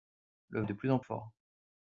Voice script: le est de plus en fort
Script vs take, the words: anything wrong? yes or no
no